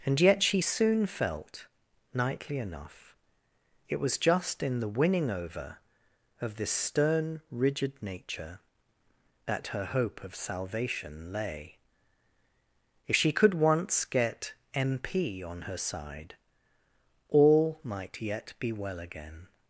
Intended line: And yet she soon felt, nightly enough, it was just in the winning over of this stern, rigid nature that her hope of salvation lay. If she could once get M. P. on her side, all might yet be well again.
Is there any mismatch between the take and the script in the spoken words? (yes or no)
no